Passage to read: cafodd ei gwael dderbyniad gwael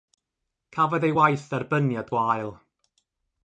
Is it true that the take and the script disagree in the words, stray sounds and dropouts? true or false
true